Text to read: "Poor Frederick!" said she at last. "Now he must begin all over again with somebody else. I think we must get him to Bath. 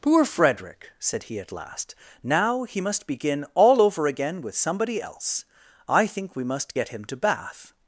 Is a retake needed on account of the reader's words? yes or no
yes